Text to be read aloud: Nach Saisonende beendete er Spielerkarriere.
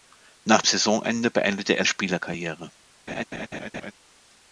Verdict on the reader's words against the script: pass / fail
pass